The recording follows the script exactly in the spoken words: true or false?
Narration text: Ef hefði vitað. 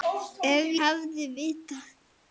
true